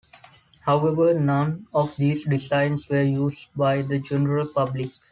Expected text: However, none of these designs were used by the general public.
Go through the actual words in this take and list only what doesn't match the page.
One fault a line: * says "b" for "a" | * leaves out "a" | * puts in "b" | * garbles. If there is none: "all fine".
all fine